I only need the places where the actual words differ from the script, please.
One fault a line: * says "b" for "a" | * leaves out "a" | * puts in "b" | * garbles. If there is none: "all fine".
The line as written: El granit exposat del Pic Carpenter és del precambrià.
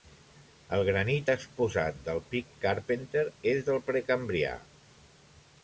all fine